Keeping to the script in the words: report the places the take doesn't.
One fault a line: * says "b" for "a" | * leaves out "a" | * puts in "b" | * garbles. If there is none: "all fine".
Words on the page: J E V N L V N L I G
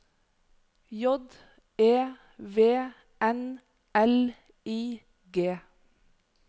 * leaves out "V N L"